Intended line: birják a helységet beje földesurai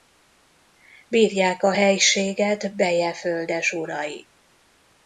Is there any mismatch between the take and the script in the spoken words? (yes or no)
no